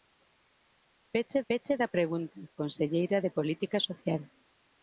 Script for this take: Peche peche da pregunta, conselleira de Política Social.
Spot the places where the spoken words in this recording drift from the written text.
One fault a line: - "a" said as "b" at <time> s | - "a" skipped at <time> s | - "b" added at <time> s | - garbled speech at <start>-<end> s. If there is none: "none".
none